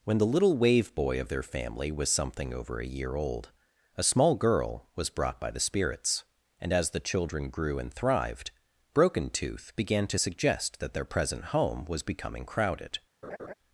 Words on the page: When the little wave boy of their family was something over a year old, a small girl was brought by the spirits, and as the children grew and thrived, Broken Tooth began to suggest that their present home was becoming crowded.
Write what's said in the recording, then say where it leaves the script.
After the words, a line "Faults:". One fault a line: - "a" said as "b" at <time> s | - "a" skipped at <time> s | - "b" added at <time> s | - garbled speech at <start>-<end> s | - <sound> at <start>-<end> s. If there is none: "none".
When the little wave boy of their family was something over a year old, a small girl was brought by the spirits, and as the children grew and thrived, Broken Tooth began to suggest that their present home was becoming crowded.
Faults:
- laugh at 13.2-13.5 s